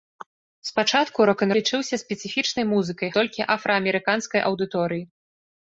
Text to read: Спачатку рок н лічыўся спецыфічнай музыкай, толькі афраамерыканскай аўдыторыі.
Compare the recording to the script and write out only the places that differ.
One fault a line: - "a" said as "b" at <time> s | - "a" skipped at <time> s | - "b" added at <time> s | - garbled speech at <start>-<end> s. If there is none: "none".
none